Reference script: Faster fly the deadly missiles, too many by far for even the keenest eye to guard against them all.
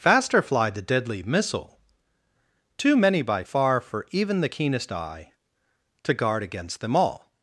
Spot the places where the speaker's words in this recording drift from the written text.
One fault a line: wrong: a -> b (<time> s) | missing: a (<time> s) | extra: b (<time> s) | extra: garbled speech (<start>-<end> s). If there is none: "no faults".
wrong: missiles -> missile (1.2 s)